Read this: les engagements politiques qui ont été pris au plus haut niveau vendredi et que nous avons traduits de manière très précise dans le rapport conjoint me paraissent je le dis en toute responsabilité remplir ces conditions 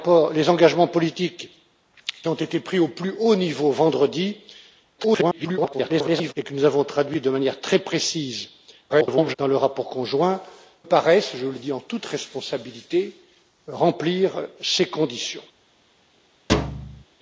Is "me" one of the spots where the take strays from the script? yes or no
yes